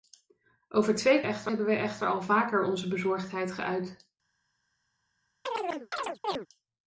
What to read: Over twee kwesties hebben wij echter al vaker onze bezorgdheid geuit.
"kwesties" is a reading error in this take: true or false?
true